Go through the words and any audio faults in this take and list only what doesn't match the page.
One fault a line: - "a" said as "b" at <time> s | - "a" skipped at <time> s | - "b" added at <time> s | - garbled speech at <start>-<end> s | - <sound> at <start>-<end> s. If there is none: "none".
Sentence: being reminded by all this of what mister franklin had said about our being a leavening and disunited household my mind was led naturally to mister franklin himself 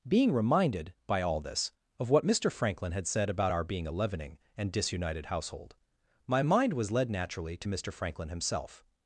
none